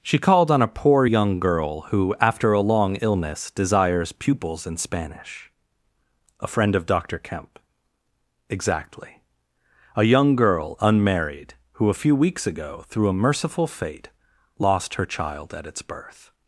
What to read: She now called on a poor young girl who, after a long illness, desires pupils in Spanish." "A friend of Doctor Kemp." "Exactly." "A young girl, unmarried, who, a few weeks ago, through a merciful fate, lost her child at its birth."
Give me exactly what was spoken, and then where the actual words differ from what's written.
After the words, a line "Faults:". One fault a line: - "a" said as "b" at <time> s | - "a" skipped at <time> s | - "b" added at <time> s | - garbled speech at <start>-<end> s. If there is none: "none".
She called on a poor young girl who, after a long illness, desires pupils in Spanish." "A friend of Doctor Kemp." "Exactly." "A young girl, unmarried, who, a few weeks ago, through a merciful fate, lost her child at its birth."
Faults:
- "now" skipped at 0.2 s